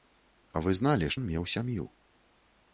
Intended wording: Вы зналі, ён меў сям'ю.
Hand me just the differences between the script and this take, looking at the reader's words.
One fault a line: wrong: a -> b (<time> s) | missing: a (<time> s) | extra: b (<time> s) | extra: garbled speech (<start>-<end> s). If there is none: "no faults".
no faults